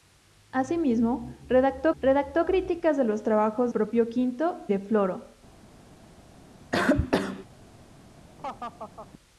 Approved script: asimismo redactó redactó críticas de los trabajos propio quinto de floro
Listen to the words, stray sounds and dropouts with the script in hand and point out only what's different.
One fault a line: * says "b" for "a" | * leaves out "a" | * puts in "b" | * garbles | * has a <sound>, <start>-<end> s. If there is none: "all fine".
* has a cough, 6.7-7.5 s
* has a laugh, 8.4-9.1 s